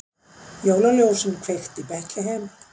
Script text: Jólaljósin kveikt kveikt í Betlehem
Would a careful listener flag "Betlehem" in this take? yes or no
no